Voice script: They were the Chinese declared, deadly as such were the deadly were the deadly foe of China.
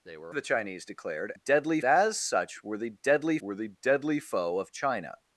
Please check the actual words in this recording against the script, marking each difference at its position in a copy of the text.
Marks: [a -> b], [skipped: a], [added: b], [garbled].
They were the Chinese declared, deadly as such were the deadly were the deadly foe of China.